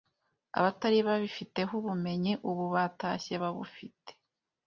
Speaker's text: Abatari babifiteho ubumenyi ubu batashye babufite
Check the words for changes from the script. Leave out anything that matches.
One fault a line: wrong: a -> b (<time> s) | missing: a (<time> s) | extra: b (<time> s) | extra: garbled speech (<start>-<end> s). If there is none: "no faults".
no faults